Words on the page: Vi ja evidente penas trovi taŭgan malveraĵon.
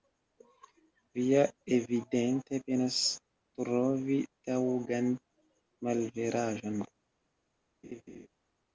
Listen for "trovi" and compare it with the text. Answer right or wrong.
right